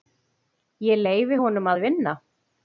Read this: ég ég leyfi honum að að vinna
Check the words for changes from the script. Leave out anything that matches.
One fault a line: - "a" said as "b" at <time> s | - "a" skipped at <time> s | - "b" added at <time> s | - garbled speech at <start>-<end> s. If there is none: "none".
- "ég" skipped at 1.0 s
- "að" skipped at 1.8 s